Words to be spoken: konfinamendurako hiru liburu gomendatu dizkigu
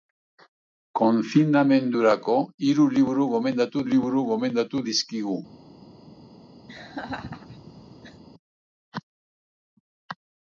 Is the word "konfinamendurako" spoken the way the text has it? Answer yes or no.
yes